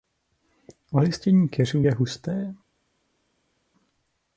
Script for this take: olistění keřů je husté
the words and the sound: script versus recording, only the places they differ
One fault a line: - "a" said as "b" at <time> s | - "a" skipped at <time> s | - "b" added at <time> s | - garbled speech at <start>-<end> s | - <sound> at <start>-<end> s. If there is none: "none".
none